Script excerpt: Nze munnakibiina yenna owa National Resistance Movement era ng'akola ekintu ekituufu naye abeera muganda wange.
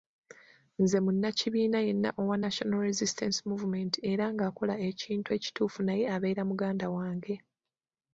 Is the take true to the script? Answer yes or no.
yes